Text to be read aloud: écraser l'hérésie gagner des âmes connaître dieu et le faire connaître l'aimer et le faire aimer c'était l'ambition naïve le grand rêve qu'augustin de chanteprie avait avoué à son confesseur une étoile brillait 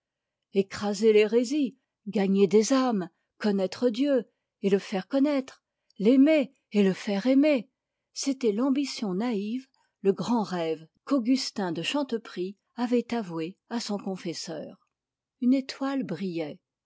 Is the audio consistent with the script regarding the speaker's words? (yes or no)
yes